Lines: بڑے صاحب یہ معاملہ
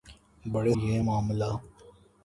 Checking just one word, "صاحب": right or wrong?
wrong